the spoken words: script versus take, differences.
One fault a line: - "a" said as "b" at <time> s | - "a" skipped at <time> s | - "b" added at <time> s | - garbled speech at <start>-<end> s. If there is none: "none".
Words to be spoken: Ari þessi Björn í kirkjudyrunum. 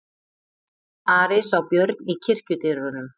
- "þessi" said as "sá" at 1.5 s